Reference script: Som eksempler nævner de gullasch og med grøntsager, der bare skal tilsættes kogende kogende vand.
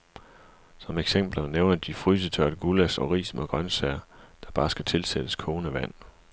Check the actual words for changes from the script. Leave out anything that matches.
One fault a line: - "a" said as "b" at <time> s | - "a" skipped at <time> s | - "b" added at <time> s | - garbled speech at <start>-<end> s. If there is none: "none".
- "frysetørret" added at 1.9 s
- "ris" added at 3.1 s
- "kogende" skipped at 5.7 s